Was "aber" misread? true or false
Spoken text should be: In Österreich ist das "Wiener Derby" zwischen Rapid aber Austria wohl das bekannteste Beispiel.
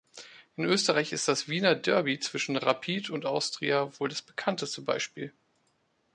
true